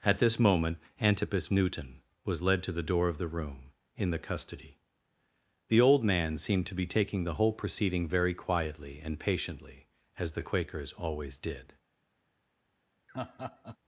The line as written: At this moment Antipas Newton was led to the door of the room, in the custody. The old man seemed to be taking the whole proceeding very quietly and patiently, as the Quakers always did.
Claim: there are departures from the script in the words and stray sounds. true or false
true